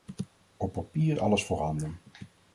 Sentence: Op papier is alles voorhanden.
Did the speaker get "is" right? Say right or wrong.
wrong